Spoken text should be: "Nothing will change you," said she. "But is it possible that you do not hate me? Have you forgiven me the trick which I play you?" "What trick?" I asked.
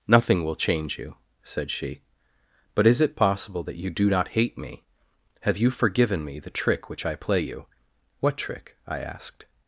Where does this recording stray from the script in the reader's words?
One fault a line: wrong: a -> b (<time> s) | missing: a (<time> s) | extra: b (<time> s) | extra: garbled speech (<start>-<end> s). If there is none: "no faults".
no faults